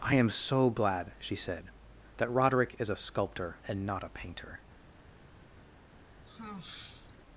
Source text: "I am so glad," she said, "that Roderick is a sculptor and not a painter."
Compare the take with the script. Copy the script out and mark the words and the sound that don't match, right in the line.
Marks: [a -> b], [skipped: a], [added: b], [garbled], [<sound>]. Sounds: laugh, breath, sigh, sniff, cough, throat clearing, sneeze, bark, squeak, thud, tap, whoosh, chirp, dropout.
"I am so glad," she said, "that Roderick is a sculptor and not a painter." [sigh]